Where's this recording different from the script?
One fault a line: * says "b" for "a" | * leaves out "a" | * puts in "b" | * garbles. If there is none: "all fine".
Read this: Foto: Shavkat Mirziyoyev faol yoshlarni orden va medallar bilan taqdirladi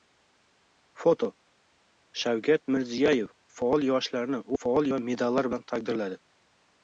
* says "faol" for "orden"